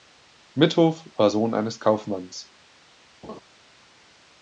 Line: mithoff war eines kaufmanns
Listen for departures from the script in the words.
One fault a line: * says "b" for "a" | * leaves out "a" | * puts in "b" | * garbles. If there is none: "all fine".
* puts in "sohn"